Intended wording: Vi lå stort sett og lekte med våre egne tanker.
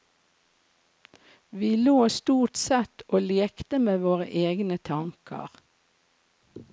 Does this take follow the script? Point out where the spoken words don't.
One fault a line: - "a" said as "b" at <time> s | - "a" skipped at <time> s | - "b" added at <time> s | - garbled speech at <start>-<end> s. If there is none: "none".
none